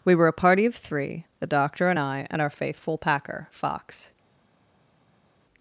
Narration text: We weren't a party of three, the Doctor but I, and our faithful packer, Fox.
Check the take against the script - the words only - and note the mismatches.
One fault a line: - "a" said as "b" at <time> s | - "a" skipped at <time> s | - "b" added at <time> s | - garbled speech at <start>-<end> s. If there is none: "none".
- "weren't" said as "were" at 0.1 s
- "but" said as "and" at 1.9 s